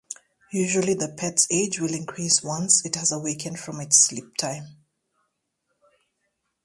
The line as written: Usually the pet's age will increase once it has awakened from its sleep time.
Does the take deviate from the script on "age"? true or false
false